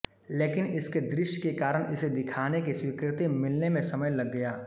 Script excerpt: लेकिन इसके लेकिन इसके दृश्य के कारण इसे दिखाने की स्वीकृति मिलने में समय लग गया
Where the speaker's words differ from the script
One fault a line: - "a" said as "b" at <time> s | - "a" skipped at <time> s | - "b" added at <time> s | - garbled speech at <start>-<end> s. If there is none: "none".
- "लेकिन इसके" skipped at 1.0 s